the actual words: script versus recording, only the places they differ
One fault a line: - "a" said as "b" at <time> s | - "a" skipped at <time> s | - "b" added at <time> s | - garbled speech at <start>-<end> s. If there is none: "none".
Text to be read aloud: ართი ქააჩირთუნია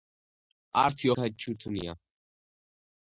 none